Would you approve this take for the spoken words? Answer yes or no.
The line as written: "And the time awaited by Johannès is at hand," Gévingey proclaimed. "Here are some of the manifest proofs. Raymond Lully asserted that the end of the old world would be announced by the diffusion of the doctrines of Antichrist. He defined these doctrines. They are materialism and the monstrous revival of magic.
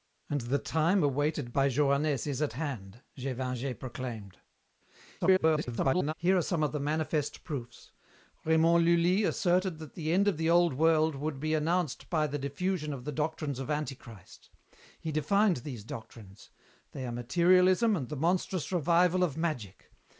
no